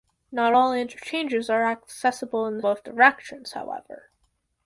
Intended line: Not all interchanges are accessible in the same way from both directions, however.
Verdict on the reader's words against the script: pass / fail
fail